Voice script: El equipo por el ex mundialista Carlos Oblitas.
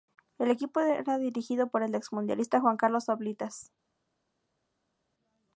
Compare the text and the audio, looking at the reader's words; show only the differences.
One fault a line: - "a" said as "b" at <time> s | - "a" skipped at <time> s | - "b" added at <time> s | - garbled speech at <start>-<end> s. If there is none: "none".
- "era dirigido" added at 0.8 s
- "Juan" added at 2.6 s